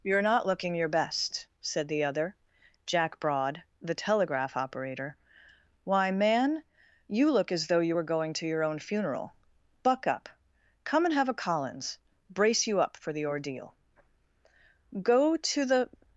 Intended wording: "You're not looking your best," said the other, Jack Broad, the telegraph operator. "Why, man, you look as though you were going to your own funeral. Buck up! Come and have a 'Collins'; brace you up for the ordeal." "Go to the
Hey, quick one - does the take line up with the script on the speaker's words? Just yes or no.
yes